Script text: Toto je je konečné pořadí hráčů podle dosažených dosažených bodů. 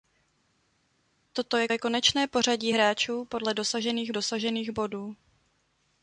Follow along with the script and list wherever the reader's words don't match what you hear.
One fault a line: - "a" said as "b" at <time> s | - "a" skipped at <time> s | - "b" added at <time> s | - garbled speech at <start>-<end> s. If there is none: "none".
none